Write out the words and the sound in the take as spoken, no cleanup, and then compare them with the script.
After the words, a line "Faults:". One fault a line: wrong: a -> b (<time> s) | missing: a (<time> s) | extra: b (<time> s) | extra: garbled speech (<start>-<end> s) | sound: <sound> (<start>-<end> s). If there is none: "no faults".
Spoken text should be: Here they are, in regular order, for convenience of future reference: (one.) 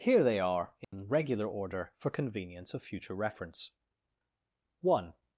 Here they are, in regular order, for convenience of future reference: (one.)
Faults:
sound: dropout (0.8-0.9 s)